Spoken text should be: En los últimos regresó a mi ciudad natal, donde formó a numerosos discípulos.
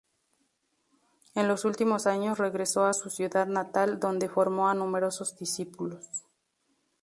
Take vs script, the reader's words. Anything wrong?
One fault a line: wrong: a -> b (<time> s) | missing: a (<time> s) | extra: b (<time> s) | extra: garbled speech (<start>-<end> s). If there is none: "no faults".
extra: años (2.1 s)
wrong: mi -> su (2.9 s)